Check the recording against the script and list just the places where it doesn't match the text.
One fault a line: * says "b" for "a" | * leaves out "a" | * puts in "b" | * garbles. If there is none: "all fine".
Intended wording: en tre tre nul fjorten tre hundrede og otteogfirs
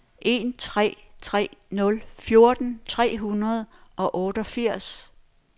all fine